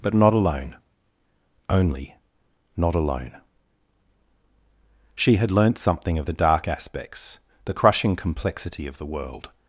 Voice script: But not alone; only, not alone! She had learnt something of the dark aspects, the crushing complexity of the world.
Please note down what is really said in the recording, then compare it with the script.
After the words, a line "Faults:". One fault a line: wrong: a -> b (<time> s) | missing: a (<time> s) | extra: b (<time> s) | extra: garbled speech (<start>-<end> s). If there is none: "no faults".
But not alone; only, not alone! She had learnt something of the dark aspects, the crushing complexity of the world.
Faults:
no faults